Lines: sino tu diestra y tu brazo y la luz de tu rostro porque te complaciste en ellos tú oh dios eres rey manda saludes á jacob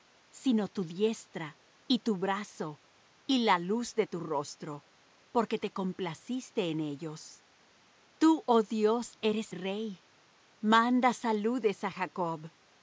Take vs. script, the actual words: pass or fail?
pass